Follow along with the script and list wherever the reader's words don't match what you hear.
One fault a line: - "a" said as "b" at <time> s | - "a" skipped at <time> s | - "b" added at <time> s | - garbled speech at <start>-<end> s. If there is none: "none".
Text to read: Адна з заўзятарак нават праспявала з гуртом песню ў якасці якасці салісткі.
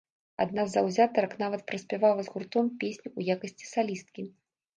- "якасці" skipped at 3.7 s